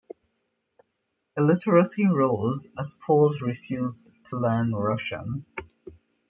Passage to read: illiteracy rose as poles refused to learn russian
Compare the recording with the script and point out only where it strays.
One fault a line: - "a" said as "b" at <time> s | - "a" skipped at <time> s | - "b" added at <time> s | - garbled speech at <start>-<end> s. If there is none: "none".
none